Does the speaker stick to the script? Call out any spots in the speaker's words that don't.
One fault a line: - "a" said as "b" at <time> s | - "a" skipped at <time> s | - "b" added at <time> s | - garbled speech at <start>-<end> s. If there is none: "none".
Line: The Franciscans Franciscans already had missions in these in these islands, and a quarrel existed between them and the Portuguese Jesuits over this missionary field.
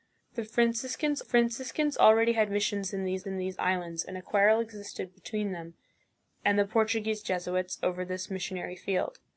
none